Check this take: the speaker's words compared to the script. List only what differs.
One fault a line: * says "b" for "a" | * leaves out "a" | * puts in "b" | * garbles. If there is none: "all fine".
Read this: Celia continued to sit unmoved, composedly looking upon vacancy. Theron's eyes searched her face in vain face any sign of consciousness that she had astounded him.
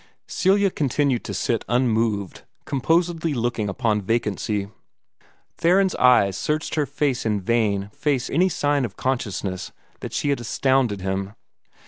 all fine